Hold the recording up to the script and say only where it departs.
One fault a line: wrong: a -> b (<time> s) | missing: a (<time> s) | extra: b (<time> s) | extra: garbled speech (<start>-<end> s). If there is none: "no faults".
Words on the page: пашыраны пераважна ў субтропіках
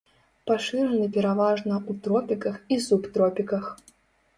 extra: тропіках і (2.1 s)